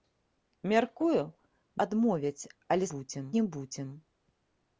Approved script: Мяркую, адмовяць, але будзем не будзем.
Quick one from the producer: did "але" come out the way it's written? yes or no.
yes